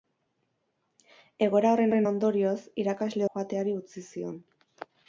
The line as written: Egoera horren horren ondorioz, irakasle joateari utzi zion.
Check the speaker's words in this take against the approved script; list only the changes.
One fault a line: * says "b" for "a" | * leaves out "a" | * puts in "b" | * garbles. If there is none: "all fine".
all fine